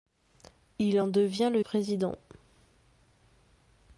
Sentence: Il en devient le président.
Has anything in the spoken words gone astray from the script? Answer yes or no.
no